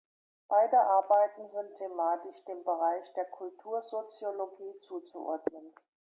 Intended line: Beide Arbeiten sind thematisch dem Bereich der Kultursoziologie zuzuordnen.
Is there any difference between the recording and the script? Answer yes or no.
no